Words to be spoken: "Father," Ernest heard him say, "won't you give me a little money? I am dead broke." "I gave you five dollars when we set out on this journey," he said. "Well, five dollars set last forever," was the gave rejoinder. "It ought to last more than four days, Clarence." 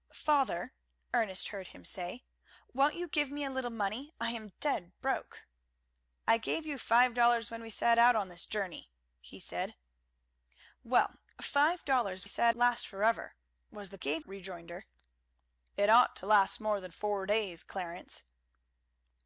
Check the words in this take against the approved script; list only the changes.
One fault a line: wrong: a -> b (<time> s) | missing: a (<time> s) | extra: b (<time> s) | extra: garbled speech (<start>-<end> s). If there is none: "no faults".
no faults